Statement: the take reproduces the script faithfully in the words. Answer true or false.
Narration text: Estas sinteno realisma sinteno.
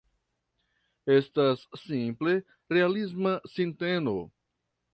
false